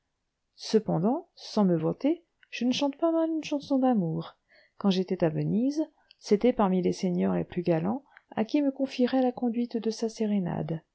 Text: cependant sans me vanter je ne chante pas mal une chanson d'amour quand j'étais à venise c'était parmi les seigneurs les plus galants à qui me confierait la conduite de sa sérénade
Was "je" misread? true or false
false